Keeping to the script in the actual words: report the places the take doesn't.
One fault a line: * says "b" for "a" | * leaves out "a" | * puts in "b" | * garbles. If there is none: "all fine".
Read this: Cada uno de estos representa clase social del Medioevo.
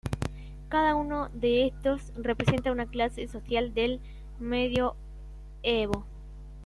* puts in "una"